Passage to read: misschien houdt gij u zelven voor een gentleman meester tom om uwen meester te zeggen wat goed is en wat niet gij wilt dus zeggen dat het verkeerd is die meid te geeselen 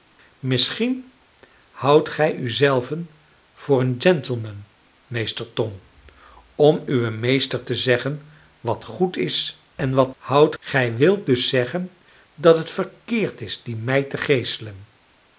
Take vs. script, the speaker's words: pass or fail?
fail